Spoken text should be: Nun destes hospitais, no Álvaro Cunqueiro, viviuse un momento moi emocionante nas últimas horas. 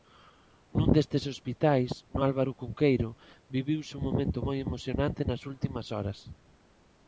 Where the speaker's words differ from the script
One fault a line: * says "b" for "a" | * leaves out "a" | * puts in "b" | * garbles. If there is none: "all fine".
all fine